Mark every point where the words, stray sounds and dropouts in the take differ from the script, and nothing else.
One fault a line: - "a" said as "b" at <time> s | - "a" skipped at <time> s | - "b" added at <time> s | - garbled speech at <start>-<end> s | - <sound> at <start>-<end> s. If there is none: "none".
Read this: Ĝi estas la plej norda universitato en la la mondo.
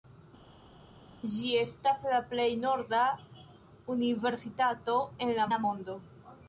none